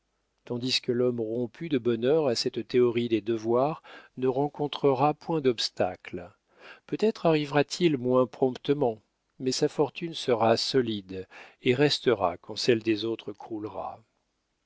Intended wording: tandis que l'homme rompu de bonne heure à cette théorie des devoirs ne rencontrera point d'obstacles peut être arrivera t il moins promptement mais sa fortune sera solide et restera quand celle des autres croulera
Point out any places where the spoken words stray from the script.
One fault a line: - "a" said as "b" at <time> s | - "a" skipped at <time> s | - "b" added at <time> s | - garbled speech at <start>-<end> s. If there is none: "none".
none